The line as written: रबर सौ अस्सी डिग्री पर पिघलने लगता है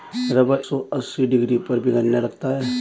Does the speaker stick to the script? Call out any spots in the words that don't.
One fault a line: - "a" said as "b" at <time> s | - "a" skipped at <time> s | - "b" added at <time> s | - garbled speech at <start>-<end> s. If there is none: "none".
none